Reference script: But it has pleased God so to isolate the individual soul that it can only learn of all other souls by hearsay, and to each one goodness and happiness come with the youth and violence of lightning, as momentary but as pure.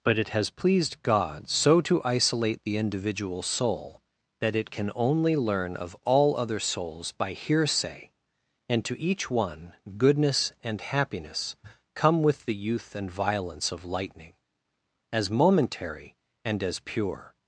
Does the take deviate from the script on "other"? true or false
false